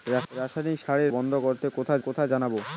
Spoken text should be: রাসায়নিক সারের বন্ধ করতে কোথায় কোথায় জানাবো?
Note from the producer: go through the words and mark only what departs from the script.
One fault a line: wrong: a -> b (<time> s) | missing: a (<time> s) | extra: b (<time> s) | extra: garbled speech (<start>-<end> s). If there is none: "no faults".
no faults